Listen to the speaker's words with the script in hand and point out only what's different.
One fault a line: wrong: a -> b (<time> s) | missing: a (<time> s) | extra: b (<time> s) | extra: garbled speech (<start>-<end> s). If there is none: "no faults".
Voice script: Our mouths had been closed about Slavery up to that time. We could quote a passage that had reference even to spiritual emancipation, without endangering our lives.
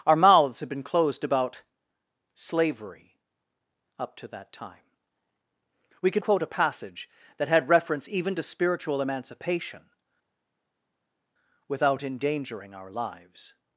no faults